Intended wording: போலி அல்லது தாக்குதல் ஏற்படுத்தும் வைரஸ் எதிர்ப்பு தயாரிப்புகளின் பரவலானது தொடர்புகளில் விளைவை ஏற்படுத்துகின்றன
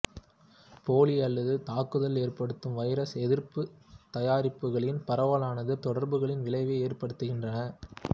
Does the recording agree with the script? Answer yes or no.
yes